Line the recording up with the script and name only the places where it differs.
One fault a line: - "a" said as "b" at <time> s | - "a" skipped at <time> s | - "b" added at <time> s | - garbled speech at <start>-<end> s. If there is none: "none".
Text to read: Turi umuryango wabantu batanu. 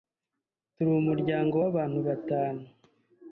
none